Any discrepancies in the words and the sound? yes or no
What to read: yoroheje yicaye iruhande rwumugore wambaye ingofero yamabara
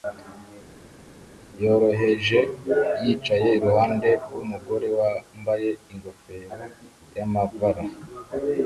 no